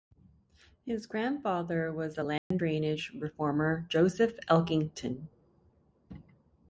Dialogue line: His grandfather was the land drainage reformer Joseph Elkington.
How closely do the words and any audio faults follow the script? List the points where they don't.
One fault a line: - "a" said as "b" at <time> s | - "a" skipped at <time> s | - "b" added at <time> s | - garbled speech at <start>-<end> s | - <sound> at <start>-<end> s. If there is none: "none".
- dropout at 2.4-2.5 s